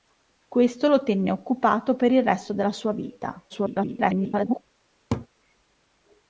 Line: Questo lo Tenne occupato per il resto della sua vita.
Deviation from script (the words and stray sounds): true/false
true